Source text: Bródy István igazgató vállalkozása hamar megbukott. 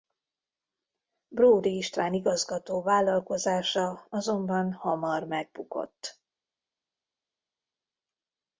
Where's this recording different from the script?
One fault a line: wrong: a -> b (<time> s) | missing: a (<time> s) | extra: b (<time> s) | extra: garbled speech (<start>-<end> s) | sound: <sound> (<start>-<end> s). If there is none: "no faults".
extra: azonban (4.1 s)